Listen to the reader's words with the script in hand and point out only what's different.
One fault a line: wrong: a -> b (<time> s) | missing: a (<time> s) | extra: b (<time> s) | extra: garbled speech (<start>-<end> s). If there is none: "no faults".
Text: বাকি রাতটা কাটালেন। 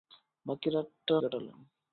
no faults